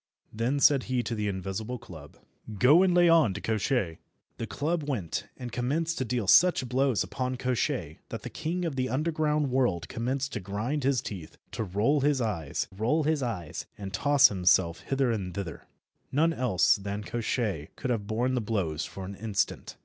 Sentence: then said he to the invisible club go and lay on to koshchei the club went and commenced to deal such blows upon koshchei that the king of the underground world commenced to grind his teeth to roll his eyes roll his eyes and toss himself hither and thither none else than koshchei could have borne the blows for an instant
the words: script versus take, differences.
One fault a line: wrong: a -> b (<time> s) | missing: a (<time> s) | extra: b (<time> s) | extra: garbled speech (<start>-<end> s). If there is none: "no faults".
no faults